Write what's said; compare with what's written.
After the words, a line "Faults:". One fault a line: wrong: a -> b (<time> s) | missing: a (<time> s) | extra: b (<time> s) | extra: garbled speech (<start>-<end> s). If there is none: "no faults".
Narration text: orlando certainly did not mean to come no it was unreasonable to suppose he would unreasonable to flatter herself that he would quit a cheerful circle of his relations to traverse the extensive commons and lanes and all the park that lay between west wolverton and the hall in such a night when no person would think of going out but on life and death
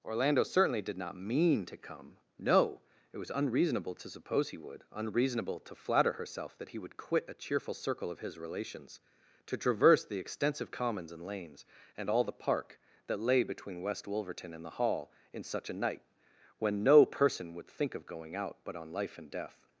orlando certainly did not mean to come no it was unreasonable to suppose he would unreasonable to flatter herself that he would quit a cheerful circle of his relations to traverse the extensive commons and lanes and all the park that lay between west wolverton and the hall in such a night when no person would think of going out but on life and death
Faults:
no faults